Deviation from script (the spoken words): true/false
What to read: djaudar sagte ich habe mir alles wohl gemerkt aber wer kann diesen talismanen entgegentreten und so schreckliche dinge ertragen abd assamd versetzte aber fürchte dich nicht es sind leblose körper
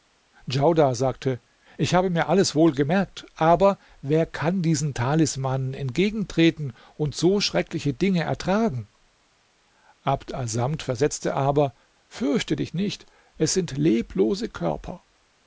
false